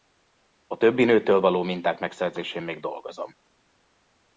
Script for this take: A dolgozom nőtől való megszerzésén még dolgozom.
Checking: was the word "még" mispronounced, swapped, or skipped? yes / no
no